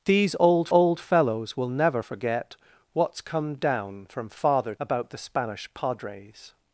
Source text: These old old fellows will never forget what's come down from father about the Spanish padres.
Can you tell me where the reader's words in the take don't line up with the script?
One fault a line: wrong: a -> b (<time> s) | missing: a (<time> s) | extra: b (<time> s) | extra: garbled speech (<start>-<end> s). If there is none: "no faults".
no faults